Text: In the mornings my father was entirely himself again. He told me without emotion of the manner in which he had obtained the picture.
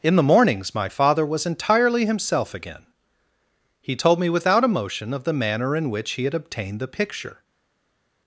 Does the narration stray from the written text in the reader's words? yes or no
no